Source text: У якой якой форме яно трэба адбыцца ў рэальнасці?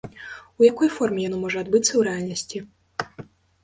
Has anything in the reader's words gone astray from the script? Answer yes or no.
yes